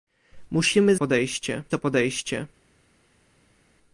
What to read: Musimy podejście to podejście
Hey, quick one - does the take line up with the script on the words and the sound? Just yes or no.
yes